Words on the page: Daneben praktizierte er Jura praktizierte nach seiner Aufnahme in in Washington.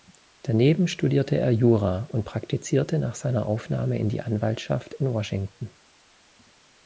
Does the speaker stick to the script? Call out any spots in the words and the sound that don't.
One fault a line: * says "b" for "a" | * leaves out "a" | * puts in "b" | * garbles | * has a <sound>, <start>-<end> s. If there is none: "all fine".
* says "studierte" for "praktizierte"
* puts in "und"
* puts in "die Anwaltschaft"